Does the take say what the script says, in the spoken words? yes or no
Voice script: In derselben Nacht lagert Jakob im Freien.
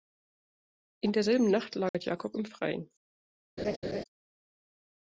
yes